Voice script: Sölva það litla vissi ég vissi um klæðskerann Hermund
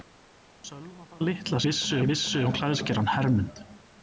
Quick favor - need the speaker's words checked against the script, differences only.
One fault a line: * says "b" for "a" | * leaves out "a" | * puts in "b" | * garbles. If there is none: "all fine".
all fine